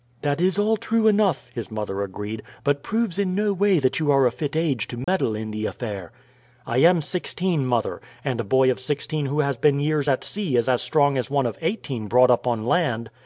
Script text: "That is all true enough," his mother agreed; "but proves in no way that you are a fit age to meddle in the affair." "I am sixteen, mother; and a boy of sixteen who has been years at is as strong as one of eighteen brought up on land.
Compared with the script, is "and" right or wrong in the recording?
right